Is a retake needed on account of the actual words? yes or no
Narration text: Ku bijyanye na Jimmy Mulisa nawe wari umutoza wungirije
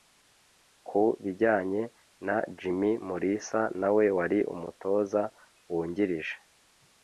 no